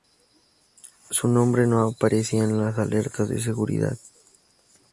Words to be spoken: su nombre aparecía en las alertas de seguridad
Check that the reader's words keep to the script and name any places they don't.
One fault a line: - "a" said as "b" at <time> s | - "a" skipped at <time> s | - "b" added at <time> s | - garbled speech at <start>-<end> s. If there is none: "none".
- "no" added at 1.7 s